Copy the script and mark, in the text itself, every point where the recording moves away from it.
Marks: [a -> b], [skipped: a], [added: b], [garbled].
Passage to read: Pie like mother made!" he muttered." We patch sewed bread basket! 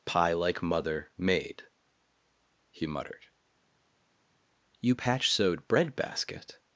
Pie like mother made!" he muttered." [We -> You] patch sewed bread basket!